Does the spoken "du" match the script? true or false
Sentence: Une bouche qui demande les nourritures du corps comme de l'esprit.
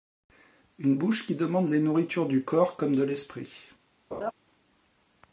true